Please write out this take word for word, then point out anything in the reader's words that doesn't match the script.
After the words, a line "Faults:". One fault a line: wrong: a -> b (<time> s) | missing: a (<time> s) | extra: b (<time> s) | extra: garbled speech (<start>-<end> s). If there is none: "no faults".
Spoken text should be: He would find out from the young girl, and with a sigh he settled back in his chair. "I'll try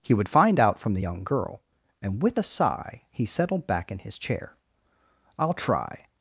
He would find out from the young girl, and with a sigh he settled back in his chair. "I'll try
Faults:
no faults